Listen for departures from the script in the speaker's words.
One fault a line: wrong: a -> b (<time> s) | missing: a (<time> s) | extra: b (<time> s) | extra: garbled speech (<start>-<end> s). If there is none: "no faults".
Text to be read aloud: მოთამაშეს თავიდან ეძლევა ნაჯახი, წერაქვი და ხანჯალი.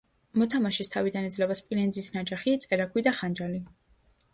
extra: სპილენძის (1.6 s)